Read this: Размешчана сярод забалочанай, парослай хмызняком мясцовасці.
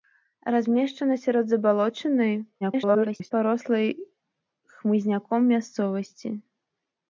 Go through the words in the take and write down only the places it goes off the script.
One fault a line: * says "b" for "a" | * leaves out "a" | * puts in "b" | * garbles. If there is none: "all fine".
* garbles